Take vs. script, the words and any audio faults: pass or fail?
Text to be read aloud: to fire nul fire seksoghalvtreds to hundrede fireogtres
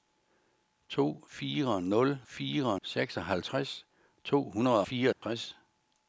fail